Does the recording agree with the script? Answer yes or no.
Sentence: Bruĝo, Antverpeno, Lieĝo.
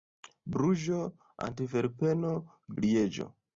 yes